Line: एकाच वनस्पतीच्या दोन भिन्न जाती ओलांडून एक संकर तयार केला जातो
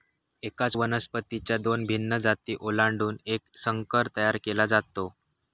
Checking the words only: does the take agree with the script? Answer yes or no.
yes